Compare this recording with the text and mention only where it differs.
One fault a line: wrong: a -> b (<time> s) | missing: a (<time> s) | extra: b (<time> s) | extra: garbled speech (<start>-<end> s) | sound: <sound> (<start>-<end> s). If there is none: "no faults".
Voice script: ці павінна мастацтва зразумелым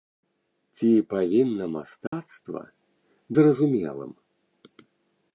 sound: dropout (2.1-2.1 s)